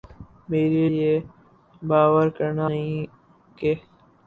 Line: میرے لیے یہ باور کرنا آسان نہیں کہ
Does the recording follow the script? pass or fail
fail